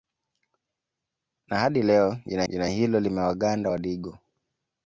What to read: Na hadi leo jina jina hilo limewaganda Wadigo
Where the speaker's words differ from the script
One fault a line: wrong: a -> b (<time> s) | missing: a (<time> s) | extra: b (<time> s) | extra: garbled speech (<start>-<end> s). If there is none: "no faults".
no faults